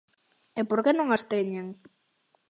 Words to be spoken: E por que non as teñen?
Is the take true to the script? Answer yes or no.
yes